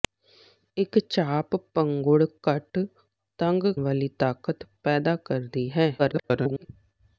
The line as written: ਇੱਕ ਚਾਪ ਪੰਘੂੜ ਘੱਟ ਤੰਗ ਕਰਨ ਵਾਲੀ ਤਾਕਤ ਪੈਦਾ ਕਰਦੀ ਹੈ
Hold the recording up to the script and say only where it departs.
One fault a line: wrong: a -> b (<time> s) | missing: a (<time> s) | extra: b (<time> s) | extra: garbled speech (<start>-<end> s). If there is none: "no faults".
missing: ਕਰਨ (3.6 s)
extra: garbled speech (6.0-6.7 s)